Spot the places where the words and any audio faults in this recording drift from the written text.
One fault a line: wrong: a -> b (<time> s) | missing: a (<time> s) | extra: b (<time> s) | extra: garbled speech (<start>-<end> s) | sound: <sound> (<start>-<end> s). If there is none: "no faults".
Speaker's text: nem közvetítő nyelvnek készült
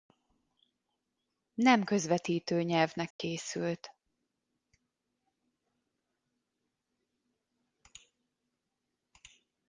sound: dropout (3.1-3.2 s)